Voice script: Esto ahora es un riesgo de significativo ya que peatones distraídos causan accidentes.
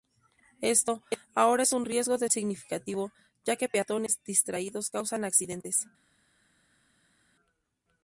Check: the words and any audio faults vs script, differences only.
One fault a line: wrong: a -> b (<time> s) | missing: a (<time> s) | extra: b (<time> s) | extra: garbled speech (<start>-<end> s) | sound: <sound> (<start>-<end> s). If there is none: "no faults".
no faults